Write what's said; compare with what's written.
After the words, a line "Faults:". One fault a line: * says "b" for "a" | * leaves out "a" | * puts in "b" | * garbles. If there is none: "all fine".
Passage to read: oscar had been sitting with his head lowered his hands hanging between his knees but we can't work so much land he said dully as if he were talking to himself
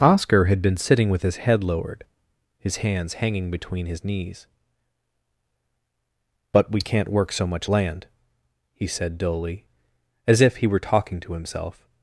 oscar had been sitting with his head lowered his hands hanging between his knees but we can't work so much land he said dully as if he were talking to himself
Faults:
all fine